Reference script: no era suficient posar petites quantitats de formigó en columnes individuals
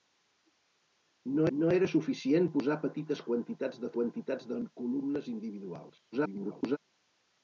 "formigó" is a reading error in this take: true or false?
true